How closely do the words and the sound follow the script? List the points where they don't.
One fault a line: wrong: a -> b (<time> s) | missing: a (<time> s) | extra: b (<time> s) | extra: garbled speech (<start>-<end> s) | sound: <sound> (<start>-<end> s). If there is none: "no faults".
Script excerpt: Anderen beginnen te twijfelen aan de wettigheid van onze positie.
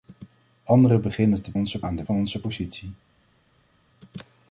wrong: twijfelen -> onze (1.5 s)
missing: wettigheid (2.0 s)